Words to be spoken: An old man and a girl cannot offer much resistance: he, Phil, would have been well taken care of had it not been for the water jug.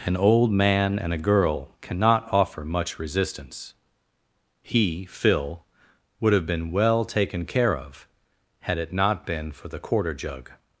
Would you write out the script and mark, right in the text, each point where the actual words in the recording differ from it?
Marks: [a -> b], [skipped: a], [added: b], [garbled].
An old man and a girl cannot offer much resistance: he, Phil, would have been well taken care of had it not been for the [water -> quarter] jug.